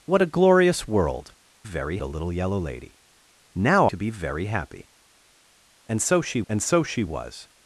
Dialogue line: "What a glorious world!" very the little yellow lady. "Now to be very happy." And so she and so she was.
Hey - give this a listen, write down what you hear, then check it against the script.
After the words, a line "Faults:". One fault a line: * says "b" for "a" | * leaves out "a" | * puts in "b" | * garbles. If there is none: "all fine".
"What a glorious world!" very the little yellow lady. "Now to be very happy." And so she and so she was.
Faults:
all fine